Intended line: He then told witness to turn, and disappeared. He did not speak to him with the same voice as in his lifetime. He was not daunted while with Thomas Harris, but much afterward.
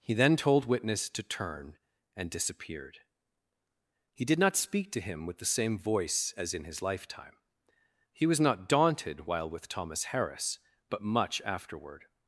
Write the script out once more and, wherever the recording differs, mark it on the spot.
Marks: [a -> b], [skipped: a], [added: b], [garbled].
He then told witness to turn, and disappeared. He did not speak to him with the same voice as in his lifetime. He was not daunted while with Thomas Harris, but much afterward.